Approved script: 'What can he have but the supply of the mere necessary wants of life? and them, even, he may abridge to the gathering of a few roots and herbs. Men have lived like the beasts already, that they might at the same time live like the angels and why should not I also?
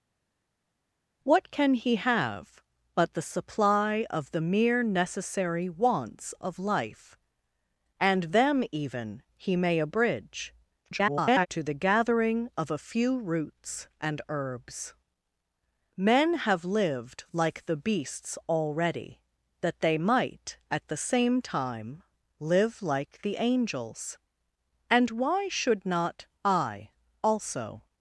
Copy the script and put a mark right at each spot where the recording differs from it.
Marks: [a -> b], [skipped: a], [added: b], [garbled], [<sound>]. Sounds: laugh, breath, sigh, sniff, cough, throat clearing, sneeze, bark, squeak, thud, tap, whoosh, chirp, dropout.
'What can he have but the supply of the mere necessary wants of life? and them, even, he may abridge [garbled] to the gathering of a few roots and herbs. Men have lived like the beasts already, that they might at the same time live like the angels and why should not I also?